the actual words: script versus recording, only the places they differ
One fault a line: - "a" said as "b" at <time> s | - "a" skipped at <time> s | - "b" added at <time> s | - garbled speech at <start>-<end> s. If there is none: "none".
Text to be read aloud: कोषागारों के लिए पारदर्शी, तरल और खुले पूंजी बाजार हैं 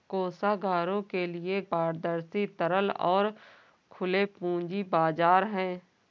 none